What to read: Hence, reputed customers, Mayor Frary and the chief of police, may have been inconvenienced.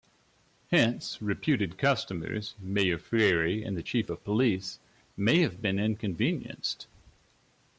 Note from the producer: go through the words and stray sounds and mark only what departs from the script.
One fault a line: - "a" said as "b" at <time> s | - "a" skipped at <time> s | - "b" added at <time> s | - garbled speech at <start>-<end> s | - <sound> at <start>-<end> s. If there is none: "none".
none